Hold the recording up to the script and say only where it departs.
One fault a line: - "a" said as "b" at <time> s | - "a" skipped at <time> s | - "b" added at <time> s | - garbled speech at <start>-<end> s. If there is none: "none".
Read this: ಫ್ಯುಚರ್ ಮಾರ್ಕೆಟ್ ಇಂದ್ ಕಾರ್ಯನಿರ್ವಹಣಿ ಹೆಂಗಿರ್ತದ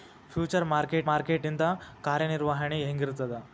- "ಮಾರ್ಕೆಟ್" added at 1.0 s